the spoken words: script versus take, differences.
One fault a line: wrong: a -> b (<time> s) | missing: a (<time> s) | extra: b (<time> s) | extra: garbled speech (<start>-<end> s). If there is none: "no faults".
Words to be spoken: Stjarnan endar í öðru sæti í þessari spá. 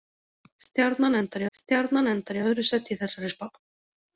extra: stjarnan endar (1.6 s)